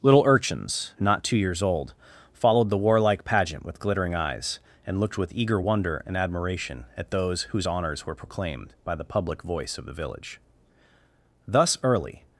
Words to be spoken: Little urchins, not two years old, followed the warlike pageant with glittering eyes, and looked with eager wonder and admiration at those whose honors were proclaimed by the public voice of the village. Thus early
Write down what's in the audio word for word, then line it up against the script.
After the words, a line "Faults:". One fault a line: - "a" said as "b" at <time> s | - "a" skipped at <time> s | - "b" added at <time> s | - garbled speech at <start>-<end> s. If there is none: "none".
Little urchins, not two years old, followed the warlike pageant with glittering eyes, and looked with eager wonder and admiration at those whose honors were proclaimed by the public voice of the village. Thus early
Faults:
none